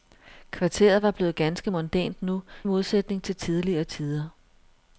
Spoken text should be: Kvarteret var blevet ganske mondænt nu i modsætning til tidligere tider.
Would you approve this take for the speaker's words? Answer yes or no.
no